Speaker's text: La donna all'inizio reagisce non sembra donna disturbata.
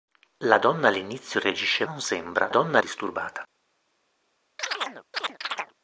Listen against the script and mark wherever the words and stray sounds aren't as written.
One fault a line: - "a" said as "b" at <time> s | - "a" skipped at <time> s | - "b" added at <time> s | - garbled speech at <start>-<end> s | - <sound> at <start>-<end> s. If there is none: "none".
- chirp at 4.6-5.7 s